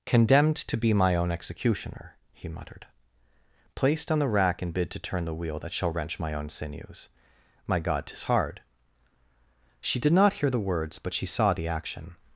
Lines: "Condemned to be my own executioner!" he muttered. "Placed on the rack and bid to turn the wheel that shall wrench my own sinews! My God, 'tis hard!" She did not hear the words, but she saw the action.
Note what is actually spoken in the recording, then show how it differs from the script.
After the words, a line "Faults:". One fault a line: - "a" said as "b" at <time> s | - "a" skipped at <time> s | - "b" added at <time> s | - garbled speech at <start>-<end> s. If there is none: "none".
"Condemned to be my own executioner!" he muttered. "Placed on the rack and bid to turn the wheel that shall wrench my own sinews! My God, 'tis hard!" She did not hear the words, but she saw the action.
Faults:
none